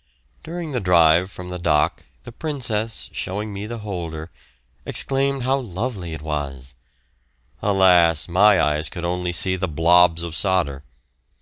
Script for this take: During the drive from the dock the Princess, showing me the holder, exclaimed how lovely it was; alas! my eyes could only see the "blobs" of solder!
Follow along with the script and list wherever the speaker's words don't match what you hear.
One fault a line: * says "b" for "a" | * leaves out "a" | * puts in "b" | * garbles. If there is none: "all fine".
all fine